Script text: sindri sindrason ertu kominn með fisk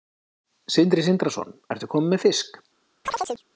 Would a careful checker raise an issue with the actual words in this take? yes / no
no